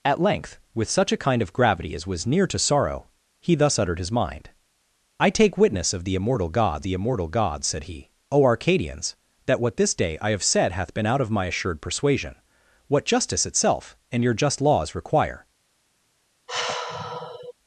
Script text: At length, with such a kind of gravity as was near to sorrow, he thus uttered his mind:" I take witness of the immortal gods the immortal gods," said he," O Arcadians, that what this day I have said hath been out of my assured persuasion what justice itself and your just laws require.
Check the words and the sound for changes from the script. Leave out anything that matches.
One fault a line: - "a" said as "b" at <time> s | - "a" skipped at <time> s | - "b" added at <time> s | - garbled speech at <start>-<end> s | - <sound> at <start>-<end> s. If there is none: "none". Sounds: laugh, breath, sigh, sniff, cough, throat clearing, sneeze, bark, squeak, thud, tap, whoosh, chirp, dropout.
- sigh at 16.5-17.5 s